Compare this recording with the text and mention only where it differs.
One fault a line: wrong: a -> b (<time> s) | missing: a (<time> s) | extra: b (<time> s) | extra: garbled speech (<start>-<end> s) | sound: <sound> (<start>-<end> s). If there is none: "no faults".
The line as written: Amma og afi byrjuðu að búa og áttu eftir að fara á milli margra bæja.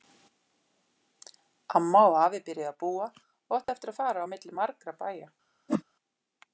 sound: dropout (3.6-3.7 s)
sound: whoosh (5.7-5.8 s)